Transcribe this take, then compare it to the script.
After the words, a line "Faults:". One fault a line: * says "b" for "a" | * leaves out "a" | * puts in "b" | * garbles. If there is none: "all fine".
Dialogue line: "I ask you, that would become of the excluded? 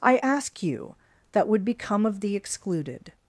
"I ask you, that would become of the excluded?
Faults:
all fine